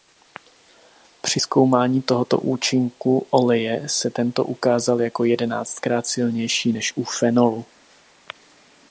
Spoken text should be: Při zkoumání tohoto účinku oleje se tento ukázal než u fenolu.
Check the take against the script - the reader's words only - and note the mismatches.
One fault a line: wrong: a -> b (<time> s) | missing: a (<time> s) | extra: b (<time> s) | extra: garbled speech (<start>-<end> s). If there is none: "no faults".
extra: jako jedenáctkrát silnější (5.0 s)